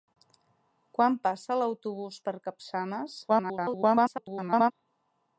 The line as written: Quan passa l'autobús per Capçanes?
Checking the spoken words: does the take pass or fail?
fail